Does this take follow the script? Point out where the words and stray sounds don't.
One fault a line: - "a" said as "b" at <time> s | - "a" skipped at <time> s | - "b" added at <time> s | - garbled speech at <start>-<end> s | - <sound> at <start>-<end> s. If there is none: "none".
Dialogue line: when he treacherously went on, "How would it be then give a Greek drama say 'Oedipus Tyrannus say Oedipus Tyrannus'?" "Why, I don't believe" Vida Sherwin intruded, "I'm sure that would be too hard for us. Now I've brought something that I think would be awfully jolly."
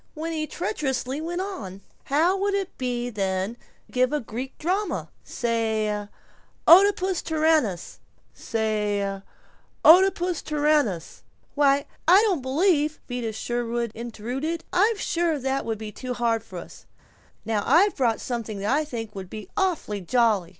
none